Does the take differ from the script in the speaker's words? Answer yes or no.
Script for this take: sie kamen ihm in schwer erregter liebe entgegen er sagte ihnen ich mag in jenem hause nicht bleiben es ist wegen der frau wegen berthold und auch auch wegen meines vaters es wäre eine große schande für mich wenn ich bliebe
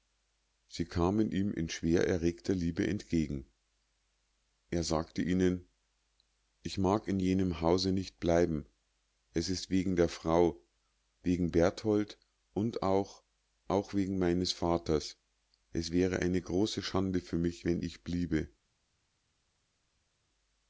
no